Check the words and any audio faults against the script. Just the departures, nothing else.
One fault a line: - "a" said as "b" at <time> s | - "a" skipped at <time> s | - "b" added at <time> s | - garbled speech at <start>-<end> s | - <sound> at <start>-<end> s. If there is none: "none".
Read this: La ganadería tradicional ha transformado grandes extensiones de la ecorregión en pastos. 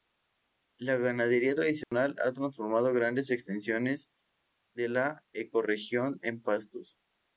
- dropout at 1.8-1.9 s